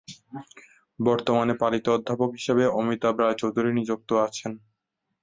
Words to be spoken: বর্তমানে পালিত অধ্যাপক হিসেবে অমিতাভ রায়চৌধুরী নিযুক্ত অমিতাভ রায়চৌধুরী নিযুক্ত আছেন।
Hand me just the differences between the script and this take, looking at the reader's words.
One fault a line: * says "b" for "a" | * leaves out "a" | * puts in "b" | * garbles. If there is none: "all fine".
* leaves out "অমিতাভ রায়চৌধুরী নিযুক্ত"